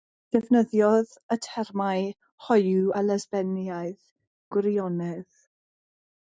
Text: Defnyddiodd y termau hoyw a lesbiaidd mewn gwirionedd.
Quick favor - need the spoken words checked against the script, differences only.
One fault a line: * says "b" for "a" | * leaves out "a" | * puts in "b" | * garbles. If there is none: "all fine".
* leaves out "mewn"